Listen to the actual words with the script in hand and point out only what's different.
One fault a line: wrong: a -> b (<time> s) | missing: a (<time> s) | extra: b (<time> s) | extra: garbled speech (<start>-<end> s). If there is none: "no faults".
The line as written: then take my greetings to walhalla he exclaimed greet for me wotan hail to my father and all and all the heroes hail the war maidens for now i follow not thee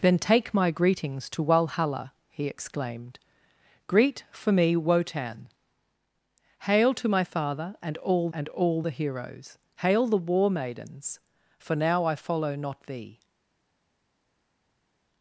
no faults